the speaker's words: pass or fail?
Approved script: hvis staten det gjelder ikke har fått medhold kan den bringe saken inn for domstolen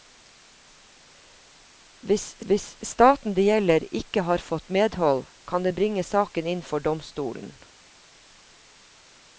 fail